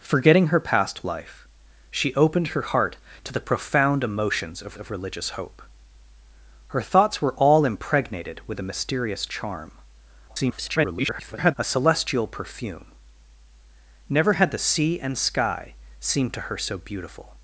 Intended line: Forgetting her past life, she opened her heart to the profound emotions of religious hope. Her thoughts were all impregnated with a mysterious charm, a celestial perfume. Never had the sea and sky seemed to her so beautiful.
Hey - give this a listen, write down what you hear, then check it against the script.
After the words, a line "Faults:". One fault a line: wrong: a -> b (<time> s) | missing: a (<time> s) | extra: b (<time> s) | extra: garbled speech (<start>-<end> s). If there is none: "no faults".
Forgetting her past life, she opened her heart to the profound emotions of of religious hope. Her thoughts were all impregnated with a mysterious charm, [garbled] a celestial perfume. Never had the sea and sky seemed to her so beautiful.
Faults:
extra: of (4.8 s)
extra: garbled speech (10.3-11.5 s)